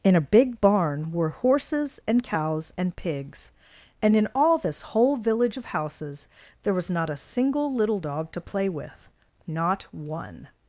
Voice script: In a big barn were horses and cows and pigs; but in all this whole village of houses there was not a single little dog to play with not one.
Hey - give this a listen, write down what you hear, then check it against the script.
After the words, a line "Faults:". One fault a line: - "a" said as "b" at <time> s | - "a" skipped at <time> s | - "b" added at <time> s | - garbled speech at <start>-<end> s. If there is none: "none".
In a big barn were horses and cows and pigs; and in all this whole village of houses there was not a single little dog to play with not one.
Faults:
- "but" said as "and" at 4.0 s